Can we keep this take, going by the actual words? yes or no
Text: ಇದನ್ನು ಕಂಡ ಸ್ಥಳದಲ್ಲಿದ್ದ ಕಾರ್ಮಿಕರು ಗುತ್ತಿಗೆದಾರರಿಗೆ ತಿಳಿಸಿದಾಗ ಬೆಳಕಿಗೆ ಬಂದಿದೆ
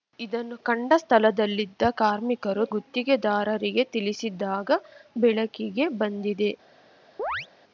yes